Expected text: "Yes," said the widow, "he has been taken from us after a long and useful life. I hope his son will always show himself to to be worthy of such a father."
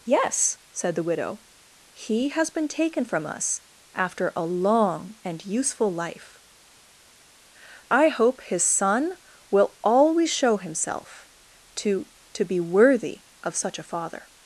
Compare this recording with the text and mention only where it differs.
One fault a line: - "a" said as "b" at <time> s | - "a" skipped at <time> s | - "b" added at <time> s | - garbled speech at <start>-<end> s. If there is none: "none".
none